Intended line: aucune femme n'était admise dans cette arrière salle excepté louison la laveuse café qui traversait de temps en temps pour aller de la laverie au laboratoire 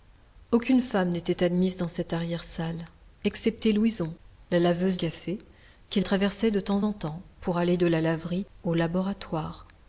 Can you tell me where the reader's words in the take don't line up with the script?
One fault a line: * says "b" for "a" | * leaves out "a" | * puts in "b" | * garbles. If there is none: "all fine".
all fine